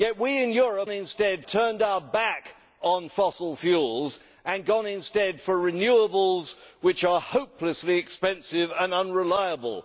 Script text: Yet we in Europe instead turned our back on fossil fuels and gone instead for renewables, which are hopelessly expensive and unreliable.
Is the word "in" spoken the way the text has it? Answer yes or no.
yes